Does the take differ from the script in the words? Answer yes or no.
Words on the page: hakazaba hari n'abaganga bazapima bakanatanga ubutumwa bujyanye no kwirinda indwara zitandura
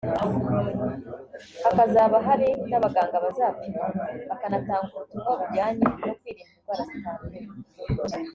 no